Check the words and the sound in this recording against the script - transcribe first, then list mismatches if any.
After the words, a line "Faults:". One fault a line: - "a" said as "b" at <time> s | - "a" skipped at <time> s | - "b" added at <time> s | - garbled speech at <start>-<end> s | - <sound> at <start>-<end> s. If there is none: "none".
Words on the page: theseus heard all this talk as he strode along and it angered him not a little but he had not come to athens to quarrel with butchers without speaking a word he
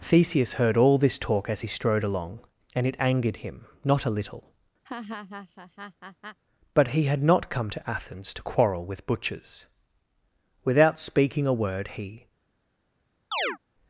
theseus heard all this talk as he strode along and it angered him not a little but he had not come to athens to quarrel with butchers without speaking a word he
Faults:
- laugh at 4.8-6.4 s
- chirp at 13.3-13.6 s